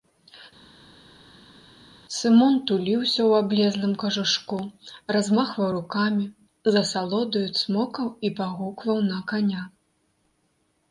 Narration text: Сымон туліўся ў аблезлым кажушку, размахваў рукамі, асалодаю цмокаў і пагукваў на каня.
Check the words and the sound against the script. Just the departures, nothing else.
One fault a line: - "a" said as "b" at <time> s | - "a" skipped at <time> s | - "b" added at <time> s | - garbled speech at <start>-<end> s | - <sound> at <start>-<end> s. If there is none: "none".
- "з" added at 6.7 s